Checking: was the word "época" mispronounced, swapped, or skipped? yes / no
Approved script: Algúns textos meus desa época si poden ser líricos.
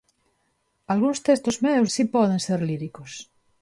yes